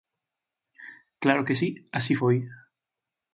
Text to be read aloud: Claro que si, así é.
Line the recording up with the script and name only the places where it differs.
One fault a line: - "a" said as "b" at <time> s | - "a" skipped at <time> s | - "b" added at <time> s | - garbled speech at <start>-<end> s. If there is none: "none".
- "é" said as "foi" at 2.2 s